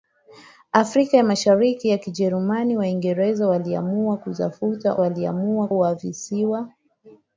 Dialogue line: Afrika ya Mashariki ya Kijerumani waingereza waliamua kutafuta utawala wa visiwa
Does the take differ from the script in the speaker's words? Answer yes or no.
yes